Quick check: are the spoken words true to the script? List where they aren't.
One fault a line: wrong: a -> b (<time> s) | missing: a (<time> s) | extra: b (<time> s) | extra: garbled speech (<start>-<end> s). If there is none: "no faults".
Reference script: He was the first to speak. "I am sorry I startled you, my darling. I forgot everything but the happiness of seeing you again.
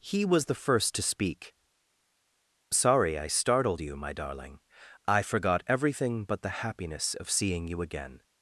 missing: I am (1.5 s)